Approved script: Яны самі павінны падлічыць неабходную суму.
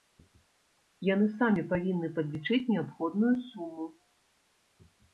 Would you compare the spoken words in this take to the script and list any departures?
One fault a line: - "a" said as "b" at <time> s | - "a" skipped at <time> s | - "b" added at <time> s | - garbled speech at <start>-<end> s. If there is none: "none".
none